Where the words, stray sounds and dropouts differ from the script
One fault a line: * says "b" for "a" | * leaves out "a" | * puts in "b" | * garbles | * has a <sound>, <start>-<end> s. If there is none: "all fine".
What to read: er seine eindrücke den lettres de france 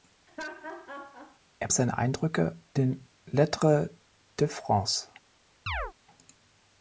* has a laugh, 0.3-1.4 s
* has a chirp, 5.7-5.9 s